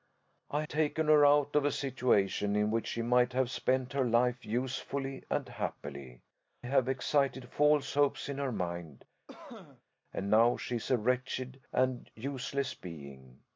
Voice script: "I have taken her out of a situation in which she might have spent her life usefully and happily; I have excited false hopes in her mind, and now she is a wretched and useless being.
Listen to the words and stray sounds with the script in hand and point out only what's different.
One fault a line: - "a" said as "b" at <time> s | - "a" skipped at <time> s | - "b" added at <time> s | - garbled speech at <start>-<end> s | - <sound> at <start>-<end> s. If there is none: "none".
- "have" skipped at 0.6 s
- "I" skipped at 6.2 s
- cough at 9.3-9.8 s